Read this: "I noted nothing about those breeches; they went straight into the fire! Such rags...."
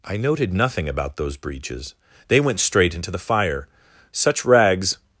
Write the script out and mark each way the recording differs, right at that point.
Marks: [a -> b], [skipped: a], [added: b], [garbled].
"I noted nothing about those breeches; they went straight into the fire! Such rags...."